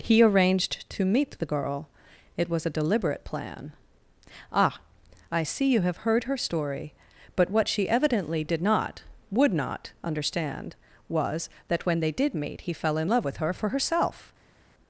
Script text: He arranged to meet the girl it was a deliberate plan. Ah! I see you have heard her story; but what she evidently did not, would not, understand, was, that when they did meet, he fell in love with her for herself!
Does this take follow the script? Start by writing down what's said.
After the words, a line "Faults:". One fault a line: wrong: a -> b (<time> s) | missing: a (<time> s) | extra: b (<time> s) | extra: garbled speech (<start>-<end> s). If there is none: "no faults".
He arranged to meet the girl it was a deliberate plan. Ah! I see you have heard her story; but what she evidently did not, would not, understand, was, that when they did meet, he fell in love with her for herself!
Faults:
no faults